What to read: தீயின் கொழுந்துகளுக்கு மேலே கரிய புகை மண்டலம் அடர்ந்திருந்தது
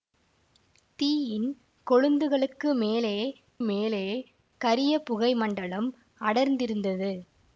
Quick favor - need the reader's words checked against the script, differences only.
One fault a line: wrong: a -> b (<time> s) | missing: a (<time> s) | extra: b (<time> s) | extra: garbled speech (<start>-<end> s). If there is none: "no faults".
extra: மேலே (3.6 s)